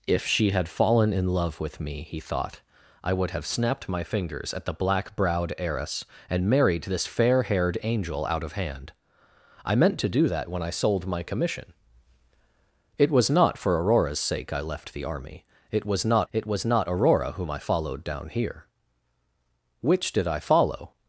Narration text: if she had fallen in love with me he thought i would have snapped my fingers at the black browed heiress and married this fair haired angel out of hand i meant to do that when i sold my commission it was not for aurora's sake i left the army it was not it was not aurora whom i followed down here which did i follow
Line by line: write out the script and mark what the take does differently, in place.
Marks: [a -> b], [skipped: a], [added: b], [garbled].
if she had fallen in love with me he thought i would have snapped my fingers at the black browed heiress and married this fair haired angel out of hand i meant to do that when i sold my commission it was not for aurora's sake i left the army it was not it was not aurora whom i followed down here which did i follow